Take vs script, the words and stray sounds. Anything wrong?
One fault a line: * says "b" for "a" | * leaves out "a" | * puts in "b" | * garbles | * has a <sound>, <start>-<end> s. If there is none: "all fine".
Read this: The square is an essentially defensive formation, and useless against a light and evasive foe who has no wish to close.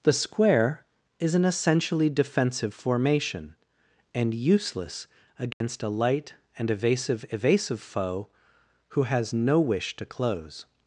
* has a dropout, 5.5-5.6 s
* puts in "evasive"